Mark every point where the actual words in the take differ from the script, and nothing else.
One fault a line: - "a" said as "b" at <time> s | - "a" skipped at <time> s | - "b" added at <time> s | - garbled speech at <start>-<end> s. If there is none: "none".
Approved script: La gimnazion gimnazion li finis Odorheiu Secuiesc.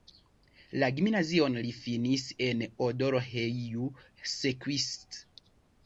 - "gimnazion" skipped at 1.6 s
- "en" added at 2.5 s